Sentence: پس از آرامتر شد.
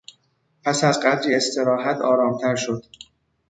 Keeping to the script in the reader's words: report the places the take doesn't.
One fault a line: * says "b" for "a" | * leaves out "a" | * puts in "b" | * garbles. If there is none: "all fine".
* puts in "قدری استراحت"